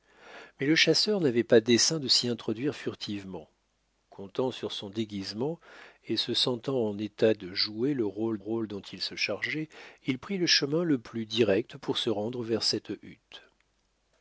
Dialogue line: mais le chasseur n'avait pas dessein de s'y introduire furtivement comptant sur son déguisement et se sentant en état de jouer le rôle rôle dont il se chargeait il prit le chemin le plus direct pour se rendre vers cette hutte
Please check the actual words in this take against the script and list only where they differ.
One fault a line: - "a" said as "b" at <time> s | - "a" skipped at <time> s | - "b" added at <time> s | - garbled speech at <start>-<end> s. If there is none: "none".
none